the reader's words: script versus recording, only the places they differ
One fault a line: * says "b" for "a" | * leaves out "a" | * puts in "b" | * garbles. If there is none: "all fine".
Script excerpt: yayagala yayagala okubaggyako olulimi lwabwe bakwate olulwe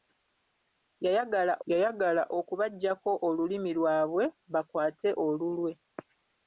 all fine